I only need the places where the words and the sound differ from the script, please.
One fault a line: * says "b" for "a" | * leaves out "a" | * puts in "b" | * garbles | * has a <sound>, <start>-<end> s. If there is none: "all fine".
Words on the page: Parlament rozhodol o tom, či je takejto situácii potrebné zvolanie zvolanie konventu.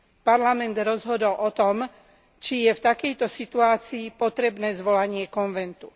* puts in "v"
* leaves out "zvolanie"